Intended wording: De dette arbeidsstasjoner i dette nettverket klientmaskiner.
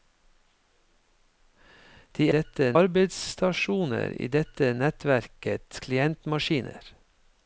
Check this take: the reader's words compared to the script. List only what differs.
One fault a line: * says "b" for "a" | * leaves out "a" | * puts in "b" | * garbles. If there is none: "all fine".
all fine